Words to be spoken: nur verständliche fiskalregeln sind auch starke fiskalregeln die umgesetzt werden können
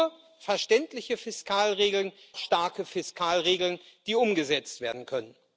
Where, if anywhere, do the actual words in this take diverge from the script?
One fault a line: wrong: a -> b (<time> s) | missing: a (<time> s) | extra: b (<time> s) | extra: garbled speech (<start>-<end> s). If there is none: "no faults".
missing: sind auch (2.1 s)